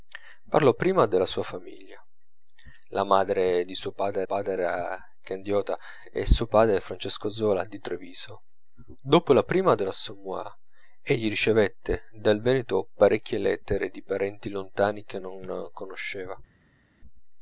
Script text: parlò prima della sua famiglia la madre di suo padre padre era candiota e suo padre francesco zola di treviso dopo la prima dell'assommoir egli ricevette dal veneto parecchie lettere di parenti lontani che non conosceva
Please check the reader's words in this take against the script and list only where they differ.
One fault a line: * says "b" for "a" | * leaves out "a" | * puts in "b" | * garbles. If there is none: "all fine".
all fine